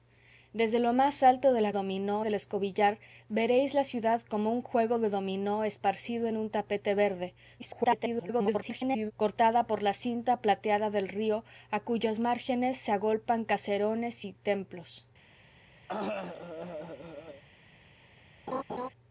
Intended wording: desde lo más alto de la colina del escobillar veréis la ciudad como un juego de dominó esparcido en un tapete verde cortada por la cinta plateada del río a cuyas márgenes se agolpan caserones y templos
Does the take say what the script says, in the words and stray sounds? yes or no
no